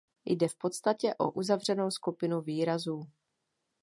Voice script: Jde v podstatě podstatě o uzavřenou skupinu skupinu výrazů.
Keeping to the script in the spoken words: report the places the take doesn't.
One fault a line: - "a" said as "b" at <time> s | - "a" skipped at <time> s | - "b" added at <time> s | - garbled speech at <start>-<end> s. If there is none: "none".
- "podstatě" skipped at 1.1 s
- "skupinu" skipped at 2.4 s